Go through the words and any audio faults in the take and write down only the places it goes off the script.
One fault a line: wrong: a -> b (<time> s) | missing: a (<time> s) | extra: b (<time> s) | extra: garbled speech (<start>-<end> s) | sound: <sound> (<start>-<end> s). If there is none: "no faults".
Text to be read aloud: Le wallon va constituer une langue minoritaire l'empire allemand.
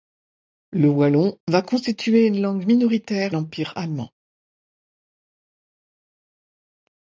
no faults